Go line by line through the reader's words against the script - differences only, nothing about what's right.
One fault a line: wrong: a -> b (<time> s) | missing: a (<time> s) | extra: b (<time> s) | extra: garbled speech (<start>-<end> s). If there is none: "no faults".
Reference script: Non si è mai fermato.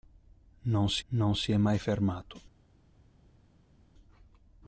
extra: non si (1.1 s)